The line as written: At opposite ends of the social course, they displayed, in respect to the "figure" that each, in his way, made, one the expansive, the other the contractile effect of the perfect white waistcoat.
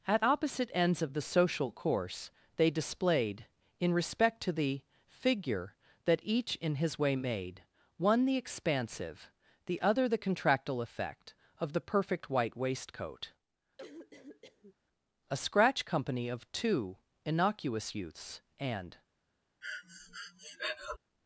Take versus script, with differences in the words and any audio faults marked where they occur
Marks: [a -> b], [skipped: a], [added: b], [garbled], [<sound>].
At opposite ends of the social course, they displayed, in respect to the "figure" that each, in his way, made, one the expansive, the other the contractile effect of the perfect white waistcoat. [cough] [added: A scratch company of two innocuous youths and] [breath]